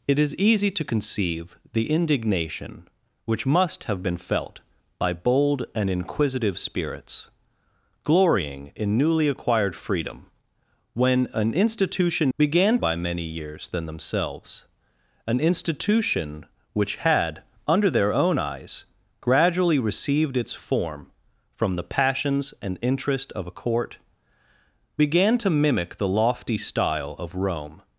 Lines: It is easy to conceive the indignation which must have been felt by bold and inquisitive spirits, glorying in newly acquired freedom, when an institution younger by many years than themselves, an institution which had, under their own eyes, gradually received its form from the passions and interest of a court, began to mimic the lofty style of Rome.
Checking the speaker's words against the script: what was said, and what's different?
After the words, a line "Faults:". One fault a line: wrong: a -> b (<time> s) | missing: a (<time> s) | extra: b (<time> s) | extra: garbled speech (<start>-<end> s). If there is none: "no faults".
It is easy to conceive the indignation which must have been felt by bold and inquisitive spirits, glorying in newly acquired freedom, when an institution began by many years than themselves, an institution which had, under their own eyes, gradually received its form from the passions and interest of a court, began to mimic the lofty style of Rome.
Faults:
wrong: younger -> began (12.4 s)